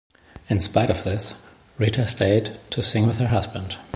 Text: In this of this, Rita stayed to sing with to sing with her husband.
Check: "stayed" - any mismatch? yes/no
no